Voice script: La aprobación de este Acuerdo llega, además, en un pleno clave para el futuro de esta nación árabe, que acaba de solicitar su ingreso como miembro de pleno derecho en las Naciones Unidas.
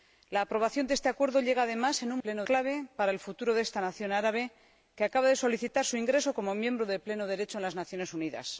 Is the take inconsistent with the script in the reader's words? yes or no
no